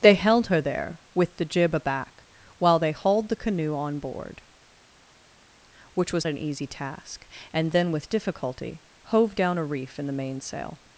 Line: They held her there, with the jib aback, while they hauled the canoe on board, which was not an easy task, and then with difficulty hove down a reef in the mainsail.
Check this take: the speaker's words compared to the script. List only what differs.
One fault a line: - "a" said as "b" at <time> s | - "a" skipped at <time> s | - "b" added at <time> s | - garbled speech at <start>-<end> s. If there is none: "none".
- "not" skipped at 6.3 s